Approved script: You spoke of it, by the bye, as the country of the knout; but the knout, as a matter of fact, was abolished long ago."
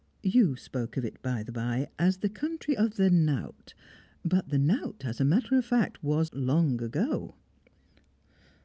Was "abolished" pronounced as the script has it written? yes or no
no